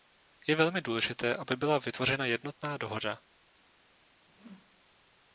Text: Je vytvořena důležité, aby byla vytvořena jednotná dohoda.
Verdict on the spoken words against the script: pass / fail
fail